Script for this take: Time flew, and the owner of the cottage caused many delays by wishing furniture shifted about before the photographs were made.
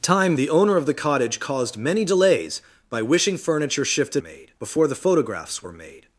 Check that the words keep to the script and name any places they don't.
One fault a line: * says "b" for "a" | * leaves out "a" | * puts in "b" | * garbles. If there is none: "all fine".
* leaves out "flew and"
* says "made" for "about"